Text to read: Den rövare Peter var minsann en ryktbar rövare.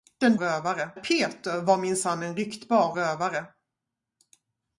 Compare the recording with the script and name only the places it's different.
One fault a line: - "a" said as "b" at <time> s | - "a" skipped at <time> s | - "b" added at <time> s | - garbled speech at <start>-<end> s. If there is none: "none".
none